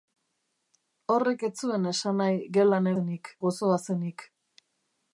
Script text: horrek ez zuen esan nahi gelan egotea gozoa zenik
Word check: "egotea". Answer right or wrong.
wrong